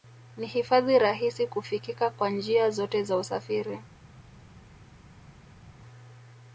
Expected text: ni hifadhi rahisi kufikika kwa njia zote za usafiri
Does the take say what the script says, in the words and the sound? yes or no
yes